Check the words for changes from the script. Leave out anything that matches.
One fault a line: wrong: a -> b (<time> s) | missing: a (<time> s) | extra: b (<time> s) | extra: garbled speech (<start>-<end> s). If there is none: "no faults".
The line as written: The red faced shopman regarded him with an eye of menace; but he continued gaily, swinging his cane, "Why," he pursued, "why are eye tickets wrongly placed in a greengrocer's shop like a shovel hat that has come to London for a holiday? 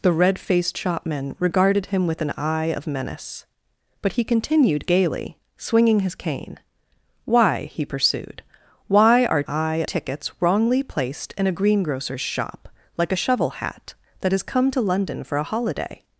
no faults